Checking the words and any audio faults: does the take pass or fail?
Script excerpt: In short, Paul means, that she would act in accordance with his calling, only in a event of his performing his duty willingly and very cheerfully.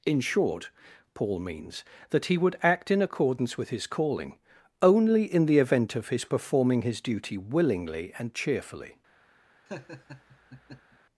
fail